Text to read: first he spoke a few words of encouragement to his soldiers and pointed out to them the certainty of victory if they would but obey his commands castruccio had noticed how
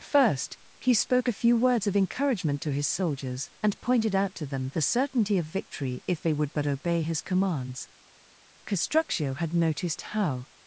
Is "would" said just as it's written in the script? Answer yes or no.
yes